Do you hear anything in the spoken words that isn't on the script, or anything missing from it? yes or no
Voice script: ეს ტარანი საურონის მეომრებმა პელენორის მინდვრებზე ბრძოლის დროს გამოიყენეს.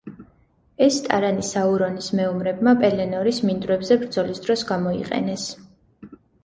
no